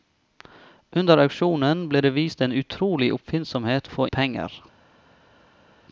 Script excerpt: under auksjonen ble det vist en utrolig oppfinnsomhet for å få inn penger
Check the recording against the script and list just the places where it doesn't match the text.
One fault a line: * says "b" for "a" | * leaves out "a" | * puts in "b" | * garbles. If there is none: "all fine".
* leaves out "for"
* leaves out "inn"